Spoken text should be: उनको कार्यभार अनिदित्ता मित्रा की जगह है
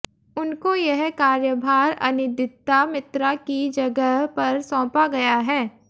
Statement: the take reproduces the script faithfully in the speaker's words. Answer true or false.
false